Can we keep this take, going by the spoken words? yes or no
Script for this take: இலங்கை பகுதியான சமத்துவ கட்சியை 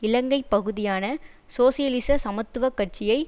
no